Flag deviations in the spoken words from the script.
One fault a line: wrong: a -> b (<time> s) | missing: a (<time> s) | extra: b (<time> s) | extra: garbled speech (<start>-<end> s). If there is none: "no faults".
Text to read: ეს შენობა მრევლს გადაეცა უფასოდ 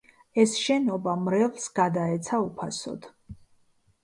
no faults